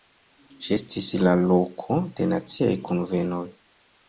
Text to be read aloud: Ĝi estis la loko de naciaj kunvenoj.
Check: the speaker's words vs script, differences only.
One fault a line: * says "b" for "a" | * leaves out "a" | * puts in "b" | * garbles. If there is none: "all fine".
all fine